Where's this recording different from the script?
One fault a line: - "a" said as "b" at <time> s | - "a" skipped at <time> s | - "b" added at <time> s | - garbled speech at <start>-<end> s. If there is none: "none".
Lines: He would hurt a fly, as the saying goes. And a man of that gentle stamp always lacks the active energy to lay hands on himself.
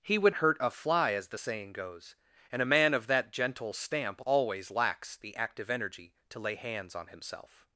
none